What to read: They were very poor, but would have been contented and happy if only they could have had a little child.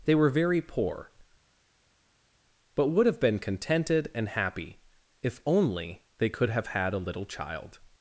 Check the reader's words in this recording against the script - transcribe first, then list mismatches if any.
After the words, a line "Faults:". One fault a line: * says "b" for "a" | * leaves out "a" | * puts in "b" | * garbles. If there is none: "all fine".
They were very poor, but would have been contented and happy if only they could have had a little child.
Faults:
all fine